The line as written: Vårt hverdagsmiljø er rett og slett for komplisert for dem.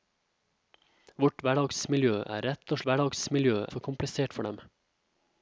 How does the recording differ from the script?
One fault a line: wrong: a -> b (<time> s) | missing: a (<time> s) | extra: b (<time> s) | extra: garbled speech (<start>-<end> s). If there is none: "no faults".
wrong: slett -> hverdagsmiljø (2.9 s)